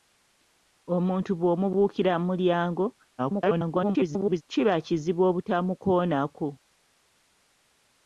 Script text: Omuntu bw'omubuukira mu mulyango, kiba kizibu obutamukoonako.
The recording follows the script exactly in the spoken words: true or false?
false